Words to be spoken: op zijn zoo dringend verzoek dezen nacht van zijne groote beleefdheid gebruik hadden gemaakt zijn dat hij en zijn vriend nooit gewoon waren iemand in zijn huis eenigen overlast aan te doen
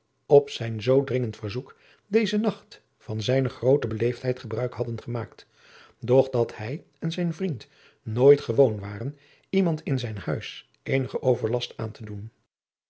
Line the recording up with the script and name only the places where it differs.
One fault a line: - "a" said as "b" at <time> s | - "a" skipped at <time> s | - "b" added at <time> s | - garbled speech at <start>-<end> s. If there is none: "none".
- "zijn" said as "doch" at 6.0 s